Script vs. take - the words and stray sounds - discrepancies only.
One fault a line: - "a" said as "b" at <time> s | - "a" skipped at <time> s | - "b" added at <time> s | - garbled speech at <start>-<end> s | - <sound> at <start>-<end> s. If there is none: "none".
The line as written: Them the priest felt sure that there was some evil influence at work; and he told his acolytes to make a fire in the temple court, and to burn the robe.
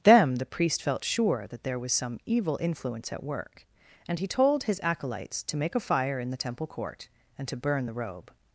none